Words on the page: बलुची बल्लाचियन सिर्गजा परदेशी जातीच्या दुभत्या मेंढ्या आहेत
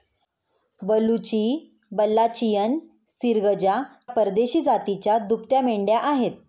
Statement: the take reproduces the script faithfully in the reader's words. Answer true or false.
true